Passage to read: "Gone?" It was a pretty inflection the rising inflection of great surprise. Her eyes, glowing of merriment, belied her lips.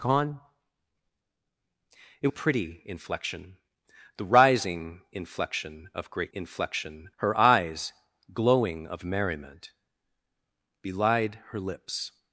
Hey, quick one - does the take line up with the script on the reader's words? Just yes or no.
no